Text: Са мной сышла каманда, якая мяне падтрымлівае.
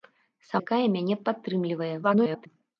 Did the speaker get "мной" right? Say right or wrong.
wrong